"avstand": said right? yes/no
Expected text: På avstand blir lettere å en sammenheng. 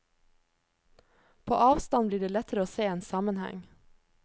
yes